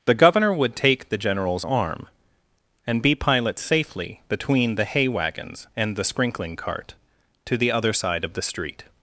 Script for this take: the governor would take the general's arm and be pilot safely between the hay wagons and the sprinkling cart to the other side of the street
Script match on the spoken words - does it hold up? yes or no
yes